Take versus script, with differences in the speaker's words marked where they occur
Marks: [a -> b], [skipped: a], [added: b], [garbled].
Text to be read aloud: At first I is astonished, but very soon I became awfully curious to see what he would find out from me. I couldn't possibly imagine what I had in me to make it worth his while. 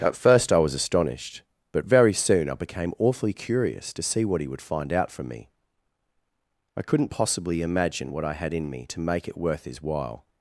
At first I [is -> was] astonished, but very soon I became awfully curious to see what he would find out from me. I couldn't possibly imagine what I had in me to make it worth his while.